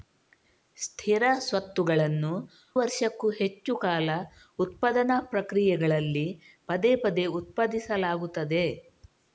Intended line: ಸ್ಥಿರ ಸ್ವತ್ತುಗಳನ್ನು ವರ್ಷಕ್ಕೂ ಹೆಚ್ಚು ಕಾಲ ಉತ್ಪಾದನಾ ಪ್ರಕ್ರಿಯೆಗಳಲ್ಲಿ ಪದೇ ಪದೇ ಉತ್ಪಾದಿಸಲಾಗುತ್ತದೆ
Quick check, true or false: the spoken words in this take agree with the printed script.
true